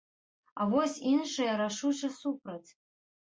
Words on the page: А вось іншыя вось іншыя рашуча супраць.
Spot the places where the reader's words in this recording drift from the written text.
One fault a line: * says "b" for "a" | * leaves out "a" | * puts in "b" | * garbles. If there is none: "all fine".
* leaves out "вось іншыя"